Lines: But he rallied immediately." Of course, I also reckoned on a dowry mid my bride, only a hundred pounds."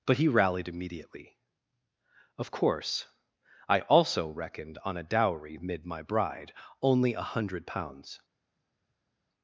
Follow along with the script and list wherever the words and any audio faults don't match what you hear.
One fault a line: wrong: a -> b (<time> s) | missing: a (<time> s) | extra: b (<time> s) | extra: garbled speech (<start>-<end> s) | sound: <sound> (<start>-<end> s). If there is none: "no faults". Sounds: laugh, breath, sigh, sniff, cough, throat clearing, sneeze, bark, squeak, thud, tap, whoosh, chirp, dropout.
no faults